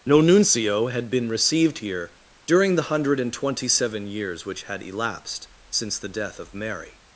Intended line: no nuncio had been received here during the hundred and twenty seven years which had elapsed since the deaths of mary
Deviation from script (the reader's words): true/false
true